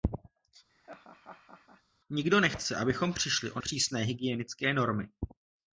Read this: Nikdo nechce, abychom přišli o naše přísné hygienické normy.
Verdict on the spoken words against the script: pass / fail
fail